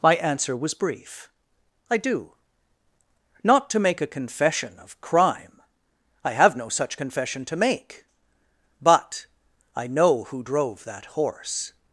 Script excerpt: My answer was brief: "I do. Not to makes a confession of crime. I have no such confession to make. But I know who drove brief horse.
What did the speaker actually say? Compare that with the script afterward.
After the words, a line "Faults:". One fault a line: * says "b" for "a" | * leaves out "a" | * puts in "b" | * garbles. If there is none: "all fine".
My answer was brief: "I do. Not to make a confession of crime. I have no such confession to make. But I know who drove that horse.
Faults:
* says "make" for "makes"
* says "that" for "brief"